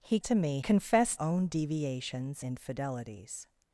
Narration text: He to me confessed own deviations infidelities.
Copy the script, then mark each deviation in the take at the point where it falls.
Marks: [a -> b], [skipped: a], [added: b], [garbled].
He to me confessed own deviations infidelities.